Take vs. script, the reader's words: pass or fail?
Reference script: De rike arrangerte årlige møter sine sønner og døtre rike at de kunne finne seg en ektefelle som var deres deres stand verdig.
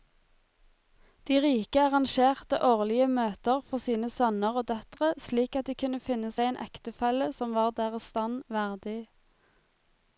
fail